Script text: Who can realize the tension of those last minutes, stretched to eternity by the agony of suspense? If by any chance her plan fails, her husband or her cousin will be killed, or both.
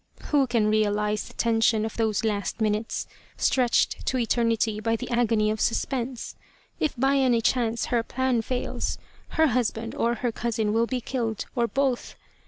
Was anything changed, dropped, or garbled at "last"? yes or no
no